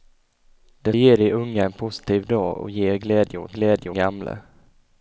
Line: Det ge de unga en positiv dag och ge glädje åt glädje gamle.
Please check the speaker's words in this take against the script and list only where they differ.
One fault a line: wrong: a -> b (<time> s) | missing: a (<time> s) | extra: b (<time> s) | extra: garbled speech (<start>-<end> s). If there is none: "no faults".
no faults